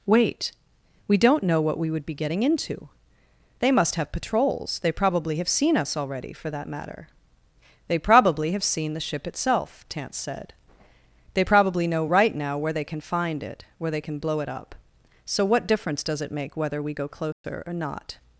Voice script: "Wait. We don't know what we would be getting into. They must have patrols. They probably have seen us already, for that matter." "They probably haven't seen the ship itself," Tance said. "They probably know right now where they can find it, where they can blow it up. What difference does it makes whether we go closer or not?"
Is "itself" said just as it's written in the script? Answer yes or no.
yes